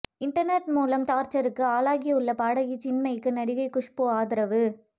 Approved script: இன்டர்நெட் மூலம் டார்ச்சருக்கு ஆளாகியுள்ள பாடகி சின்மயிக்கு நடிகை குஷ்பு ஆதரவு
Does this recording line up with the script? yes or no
yes